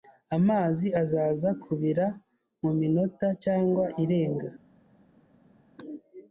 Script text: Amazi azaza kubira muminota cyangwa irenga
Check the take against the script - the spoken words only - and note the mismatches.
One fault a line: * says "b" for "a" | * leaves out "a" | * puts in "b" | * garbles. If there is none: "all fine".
all fine